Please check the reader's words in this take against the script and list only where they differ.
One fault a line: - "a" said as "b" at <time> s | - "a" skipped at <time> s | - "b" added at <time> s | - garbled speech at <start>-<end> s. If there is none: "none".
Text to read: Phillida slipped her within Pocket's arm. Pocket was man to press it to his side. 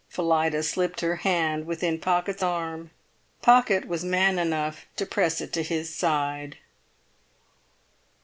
- "hand" added at 1.2 s
- "enough" added at 4.4 s